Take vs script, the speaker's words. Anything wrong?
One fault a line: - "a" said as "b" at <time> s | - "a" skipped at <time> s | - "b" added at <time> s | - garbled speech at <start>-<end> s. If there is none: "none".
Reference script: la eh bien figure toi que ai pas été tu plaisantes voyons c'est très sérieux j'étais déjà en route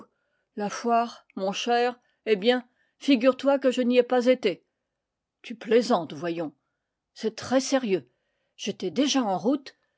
- "foire mon cher" added at 0.7 s
- "je n'y" added at 3.7 s